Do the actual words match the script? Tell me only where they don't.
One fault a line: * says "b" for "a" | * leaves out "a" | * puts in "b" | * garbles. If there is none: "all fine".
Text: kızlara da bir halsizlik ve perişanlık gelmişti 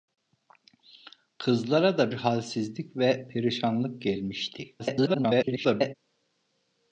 * leaves out "bir"
* garbles